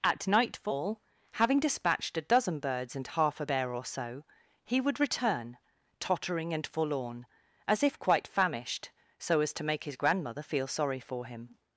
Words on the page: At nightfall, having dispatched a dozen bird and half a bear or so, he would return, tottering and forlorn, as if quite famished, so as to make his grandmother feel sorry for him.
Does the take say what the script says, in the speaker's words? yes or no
no